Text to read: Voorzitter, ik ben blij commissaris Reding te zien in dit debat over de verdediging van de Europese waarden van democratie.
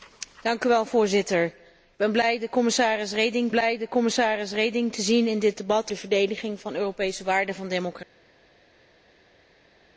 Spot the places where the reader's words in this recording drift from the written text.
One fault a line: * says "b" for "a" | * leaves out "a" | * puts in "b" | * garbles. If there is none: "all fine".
* puts in "blij commissaris Reding"
* leaves out "over"